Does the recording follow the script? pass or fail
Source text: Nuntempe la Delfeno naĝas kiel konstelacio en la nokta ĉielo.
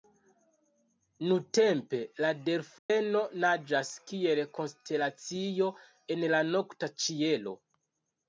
pass